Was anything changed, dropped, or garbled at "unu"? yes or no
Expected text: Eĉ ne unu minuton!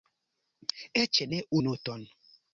yes